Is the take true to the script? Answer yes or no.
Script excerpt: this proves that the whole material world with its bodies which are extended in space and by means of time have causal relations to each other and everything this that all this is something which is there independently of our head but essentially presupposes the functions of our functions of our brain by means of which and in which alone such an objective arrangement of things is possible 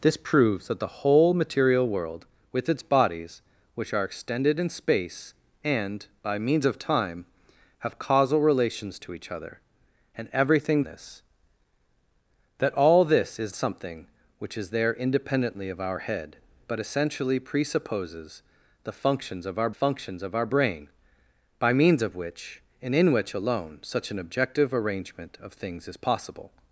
yes